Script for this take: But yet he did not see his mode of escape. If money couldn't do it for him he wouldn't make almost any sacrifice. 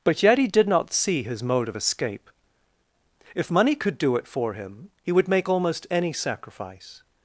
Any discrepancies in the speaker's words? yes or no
yes